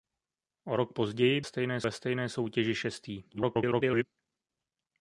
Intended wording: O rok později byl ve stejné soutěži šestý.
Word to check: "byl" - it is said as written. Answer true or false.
false